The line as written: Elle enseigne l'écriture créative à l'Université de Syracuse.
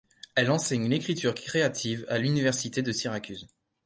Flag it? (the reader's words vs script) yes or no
no